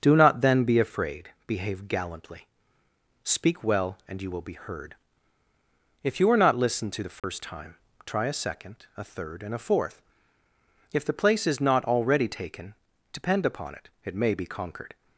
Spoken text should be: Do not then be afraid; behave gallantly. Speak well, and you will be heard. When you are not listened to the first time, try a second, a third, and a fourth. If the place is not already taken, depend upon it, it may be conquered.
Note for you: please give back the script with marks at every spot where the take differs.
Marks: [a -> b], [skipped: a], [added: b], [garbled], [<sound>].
Do not then be afraid; behave gallantly. Speak well, and you will be heard. [When -> If] you are not listened to the first [dropout] time, try a second, a third, and a fourth. If the place is not already taken, depend upon it, it may be conquered.